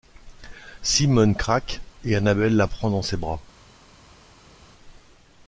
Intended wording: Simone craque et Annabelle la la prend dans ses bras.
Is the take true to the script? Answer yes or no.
no